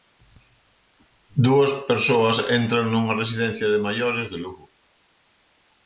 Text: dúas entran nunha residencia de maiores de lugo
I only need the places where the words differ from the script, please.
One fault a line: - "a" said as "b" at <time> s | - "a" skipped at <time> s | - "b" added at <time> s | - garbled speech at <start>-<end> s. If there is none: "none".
- "persoas" added at 1.9 s